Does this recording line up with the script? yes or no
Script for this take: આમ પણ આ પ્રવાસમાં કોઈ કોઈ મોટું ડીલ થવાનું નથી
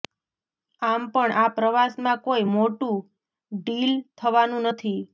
no